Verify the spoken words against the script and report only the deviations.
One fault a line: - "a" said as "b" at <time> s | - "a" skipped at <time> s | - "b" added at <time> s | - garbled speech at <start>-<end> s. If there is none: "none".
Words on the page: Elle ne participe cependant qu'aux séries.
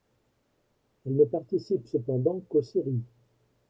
none